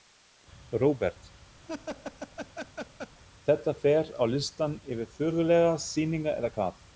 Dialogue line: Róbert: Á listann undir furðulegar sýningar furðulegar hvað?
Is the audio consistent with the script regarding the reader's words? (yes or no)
no